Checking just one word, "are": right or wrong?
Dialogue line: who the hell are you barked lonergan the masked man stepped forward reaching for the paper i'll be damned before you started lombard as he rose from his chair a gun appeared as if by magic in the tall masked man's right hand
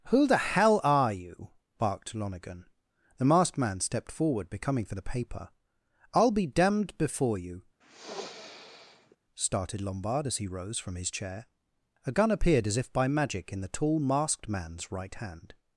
right